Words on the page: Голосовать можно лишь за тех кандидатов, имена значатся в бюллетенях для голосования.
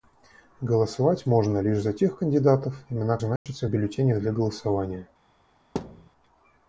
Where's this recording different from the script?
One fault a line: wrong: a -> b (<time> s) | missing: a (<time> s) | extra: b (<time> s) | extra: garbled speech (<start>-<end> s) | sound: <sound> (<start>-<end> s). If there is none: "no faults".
sound: dropout (3.4-3.5 s)
sound: thud (5.8-6.1 s)